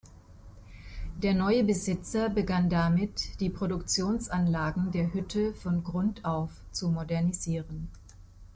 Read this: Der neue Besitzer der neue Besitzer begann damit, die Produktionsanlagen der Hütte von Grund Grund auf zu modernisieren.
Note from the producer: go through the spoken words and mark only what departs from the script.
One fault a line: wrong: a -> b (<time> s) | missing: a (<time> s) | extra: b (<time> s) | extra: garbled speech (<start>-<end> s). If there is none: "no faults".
missing: der neue Besitzer (2.3 s)
missing: Grund (6.2 s)